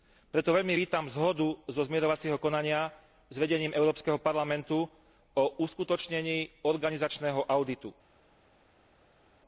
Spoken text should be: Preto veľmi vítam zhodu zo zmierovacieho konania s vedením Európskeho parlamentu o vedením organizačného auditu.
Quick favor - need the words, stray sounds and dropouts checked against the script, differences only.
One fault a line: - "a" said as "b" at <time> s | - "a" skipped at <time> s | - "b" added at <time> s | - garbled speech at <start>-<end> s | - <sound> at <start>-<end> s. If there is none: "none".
- "vedením" said as "uskutočnení" at 5.6 s